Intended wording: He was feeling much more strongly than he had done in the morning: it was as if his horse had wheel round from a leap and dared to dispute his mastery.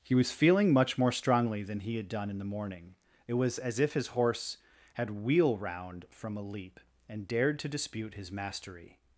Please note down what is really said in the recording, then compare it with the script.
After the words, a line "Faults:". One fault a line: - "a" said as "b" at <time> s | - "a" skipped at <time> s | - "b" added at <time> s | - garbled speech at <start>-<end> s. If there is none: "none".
He was feeling much more strongly than he had done in the morning: it was as if his horse had wheel round from a leap and dared to dispute his mastery.
Faults:
none